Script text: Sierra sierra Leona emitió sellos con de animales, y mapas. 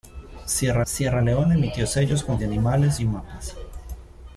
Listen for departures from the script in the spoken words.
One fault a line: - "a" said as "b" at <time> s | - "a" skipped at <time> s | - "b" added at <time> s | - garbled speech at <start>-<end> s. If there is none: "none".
none